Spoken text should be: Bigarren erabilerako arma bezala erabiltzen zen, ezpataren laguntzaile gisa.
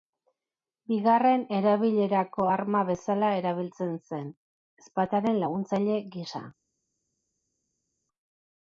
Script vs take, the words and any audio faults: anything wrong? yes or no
no